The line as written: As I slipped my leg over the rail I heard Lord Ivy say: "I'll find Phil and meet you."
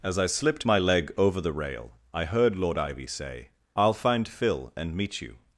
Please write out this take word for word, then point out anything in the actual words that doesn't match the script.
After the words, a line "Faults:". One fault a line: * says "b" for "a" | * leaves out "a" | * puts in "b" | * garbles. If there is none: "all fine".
As I slipped my leg over the rail I heard Lord Ivy say: "I'll find Phil and meet you."
Faults:
all fine